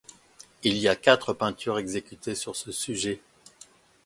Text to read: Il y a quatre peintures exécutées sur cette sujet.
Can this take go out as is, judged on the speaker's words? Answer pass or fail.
fail